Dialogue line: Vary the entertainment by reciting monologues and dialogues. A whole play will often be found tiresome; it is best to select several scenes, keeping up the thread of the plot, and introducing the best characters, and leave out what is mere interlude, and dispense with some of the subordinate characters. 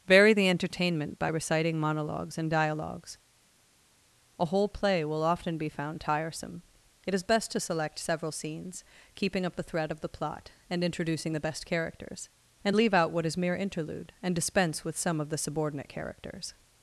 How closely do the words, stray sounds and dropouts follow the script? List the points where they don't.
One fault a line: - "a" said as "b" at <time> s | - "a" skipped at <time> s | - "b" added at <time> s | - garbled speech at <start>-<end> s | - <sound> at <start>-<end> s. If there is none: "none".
none